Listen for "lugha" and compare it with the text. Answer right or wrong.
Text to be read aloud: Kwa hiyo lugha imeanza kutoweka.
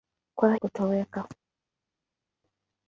wrong